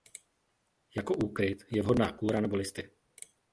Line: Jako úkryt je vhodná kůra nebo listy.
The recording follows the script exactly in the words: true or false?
true